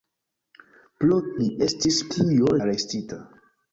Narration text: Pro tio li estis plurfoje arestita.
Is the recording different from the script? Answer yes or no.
yes